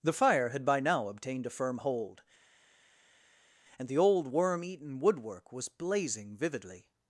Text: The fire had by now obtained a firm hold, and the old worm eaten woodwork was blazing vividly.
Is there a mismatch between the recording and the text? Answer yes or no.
no